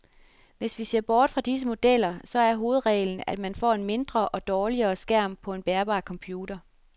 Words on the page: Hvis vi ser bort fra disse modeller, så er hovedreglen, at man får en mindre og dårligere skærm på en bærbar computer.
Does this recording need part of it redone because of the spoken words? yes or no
no